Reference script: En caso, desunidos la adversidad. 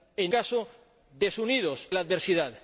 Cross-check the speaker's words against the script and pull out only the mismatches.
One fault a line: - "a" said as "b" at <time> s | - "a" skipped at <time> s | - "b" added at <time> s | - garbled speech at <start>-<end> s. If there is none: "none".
none